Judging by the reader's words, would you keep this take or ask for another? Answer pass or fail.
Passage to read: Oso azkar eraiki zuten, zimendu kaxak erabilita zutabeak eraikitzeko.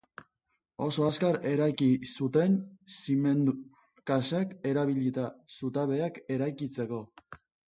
pass